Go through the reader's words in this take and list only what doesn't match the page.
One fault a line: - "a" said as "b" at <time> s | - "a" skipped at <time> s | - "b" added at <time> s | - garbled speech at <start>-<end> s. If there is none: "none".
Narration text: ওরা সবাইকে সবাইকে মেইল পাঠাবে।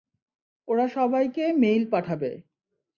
- "সবাইকে" skipped at 1.4 s